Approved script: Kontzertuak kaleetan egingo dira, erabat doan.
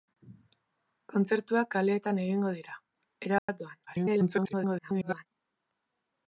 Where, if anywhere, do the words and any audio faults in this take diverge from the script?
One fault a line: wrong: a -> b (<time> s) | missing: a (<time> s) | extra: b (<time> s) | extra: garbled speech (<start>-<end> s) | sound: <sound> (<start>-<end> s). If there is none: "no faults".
sound: dropout (3.4-3.5 s)
extra: garbled speech (3.9-5.3 s)